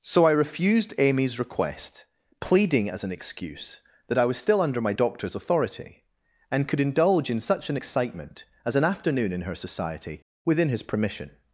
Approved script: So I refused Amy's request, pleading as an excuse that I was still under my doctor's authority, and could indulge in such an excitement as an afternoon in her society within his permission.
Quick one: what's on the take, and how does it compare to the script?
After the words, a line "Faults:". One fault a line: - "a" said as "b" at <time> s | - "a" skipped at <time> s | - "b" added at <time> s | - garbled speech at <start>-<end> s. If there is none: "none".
So I refused Amy's request, pleading as an excuse that I was still under my doctor's authority, and could indulge in such an excitement as an afternoon in her society within his permission.
Faults:
none